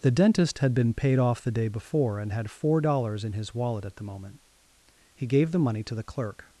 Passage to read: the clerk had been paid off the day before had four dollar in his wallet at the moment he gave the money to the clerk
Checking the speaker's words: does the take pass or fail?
fail